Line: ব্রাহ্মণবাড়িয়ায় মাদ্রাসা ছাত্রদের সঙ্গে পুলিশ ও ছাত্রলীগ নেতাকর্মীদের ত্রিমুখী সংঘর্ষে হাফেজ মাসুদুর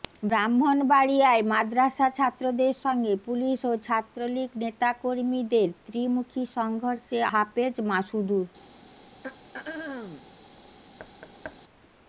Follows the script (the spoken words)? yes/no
yes